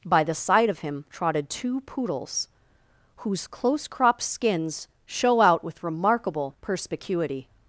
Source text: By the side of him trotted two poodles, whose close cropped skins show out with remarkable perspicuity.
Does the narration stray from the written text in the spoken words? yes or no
no